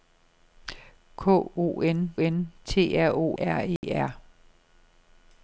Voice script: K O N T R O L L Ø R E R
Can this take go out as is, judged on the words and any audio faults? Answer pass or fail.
fail